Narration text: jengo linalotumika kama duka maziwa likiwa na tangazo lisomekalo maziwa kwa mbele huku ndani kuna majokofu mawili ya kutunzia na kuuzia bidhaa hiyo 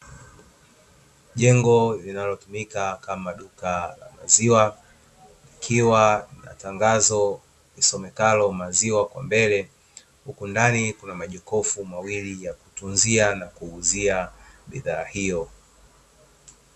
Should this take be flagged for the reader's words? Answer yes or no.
yes